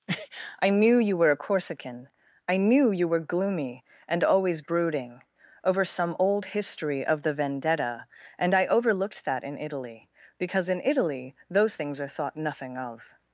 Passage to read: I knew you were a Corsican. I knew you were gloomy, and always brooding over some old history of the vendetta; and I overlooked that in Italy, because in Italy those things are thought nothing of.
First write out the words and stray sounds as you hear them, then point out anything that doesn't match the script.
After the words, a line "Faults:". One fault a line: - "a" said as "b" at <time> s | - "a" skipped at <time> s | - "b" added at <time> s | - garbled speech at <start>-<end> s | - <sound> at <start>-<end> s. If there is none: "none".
I knew you were a Corsican. I knew you were gloomy, and always brooding over some old history of the vendetta; and I overlooked that in Italy, because in Italy those things are thought nothing of.
Faults:
none